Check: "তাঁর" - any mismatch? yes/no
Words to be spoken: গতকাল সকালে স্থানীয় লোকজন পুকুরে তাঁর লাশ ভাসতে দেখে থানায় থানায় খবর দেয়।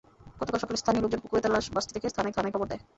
no